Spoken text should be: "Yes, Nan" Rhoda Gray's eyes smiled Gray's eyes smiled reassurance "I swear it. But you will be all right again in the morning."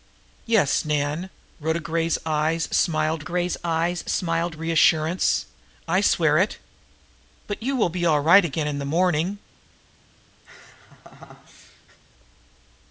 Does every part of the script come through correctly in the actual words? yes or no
yes